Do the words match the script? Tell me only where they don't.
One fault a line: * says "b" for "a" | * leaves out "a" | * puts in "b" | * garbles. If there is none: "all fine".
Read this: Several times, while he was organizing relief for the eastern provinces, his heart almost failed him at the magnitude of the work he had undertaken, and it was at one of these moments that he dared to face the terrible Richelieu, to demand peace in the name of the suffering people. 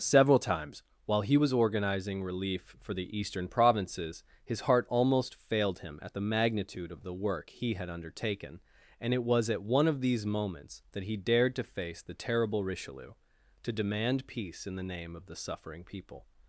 all fine